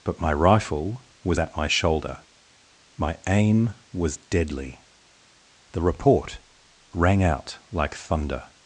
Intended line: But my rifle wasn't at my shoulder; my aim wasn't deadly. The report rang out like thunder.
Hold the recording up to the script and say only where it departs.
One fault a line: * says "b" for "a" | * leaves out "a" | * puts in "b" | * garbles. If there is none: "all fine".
* says "was" for "wasn't"
* says "was" for "wasn't"